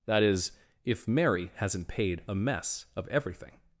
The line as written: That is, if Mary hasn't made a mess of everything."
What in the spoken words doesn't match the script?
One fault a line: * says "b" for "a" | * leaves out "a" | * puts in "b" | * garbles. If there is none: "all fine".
* says "paid" for "made"